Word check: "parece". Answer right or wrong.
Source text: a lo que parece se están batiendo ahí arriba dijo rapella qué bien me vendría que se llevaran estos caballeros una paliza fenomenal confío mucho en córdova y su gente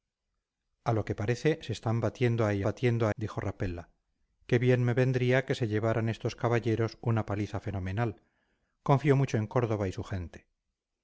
right